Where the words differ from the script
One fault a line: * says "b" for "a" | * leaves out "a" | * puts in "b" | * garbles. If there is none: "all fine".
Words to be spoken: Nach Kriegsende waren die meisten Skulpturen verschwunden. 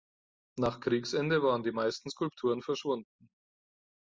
all fine